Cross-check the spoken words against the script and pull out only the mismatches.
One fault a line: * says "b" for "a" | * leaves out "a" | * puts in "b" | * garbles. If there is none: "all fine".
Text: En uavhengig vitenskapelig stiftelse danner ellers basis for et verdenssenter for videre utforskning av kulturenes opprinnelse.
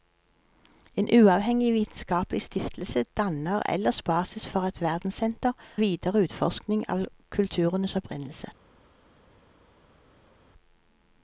* leaves out "for"